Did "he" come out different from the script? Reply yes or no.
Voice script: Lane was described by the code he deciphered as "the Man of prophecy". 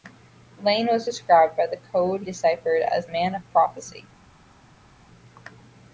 yes